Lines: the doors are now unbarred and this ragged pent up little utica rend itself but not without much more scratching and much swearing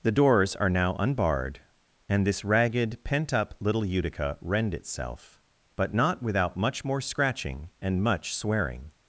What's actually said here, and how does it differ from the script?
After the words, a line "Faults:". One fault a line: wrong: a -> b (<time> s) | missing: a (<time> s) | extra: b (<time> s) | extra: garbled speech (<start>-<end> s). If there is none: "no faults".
the doors are now unbarred and this ragged pent up little utica rend itself but not without much more scratching and much swearing
Faults:
no faults